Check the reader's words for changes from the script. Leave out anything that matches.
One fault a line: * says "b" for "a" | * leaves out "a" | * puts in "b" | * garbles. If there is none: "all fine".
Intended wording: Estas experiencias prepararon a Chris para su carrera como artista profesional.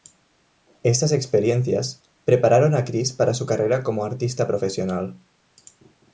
all fine